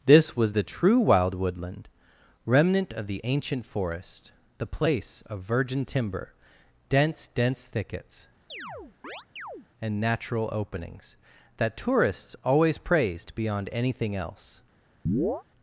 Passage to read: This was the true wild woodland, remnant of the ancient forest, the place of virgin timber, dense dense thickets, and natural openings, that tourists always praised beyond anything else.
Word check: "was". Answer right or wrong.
right